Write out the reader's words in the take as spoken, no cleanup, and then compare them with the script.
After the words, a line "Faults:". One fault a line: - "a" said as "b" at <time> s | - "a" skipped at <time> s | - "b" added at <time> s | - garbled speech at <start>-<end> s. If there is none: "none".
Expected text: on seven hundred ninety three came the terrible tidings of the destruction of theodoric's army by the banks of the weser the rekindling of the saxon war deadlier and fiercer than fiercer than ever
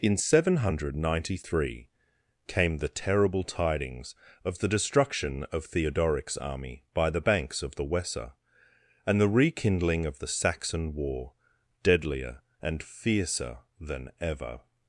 in seven hundred ninety three came the terrible tidings of the destruction of theodoric's army by the banks of the weser and the rekindling of the saxon war deadlier and fiercer than ever
Faults:
- "on" said as "in" at 0.0 s
- "and" added at 9.1 s
- "fiercer than" skipped at 14.1 s